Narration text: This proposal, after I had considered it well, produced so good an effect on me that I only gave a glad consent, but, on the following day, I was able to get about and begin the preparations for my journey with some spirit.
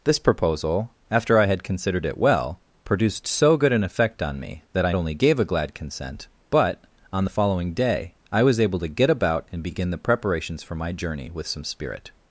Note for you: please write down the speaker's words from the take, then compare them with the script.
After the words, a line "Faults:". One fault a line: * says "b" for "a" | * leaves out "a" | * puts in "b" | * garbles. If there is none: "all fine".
This proposal, after I had considered it well, produced so good an effect on me that I only gave a glad consent, but, on the following day, I was able to get about and begin the preparations for my journey with some spirit.
Faults:
all fine